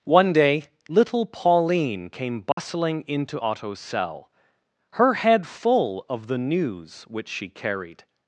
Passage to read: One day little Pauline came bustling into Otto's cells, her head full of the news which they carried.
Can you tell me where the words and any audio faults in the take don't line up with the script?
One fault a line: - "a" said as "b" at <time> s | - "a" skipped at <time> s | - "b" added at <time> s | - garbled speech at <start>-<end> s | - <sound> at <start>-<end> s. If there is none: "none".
- dropout at 2.5-2.6 s
- "cells" said as "cell" at 3.8 s
- "they" said as "she" at 7.3 s